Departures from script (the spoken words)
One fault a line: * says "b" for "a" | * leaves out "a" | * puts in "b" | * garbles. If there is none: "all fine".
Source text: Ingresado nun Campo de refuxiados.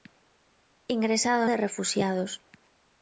* leaves out "nun Campo"